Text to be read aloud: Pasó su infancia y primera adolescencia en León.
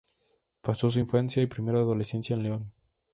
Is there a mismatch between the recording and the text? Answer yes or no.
no